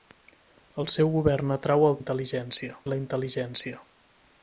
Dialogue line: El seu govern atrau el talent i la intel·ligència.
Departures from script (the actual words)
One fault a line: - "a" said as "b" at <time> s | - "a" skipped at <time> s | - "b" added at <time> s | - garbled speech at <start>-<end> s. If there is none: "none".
- "talent" said as "intel·ligència" at 2.0 s